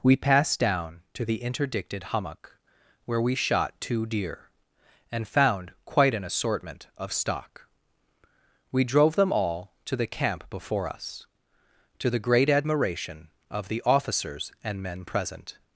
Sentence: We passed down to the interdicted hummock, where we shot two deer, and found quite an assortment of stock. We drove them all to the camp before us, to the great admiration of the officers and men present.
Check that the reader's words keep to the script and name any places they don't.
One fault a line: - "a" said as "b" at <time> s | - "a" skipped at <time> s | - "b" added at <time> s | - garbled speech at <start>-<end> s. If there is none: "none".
none